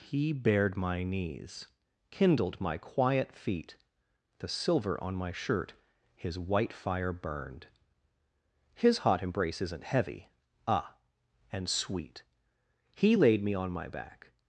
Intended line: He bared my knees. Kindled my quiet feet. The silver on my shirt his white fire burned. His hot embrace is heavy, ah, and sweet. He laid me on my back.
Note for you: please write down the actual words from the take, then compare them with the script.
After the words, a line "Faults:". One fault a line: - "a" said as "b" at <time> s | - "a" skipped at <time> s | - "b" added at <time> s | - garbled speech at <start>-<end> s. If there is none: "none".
He bared my knees. Kindled my quiet feet. The silver on my shirt his white fire burned. His hot embrace isn't heavy, ah, and sweet. He laid me on my back.
Faults:
- "is" said as "isn't" at 9.6 s